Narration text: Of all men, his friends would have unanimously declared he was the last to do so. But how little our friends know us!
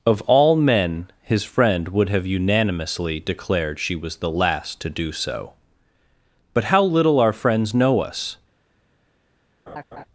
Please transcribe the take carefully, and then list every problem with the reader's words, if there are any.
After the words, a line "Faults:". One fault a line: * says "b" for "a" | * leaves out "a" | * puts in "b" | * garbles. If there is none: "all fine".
Of all men, his friend would have unanimously declared she was the last to do so. But how little our friends know us!
Faults:
* says "friend" for "friends"
* says "she" for "he"